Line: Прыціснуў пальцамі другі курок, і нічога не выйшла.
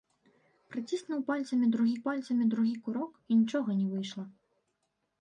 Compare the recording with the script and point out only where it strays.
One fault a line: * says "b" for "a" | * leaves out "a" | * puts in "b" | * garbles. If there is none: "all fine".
* puts in "пальцамі другі"